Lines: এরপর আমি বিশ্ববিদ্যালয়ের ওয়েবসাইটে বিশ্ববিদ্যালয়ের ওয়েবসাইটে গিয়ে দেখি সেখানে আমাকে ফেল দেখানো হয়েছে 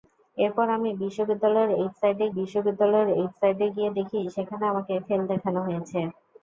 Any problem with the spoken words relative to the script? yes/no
no